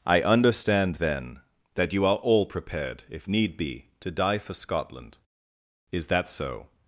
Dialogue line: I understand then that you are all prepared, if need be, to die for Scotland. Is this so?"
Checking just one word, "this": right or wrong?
wrong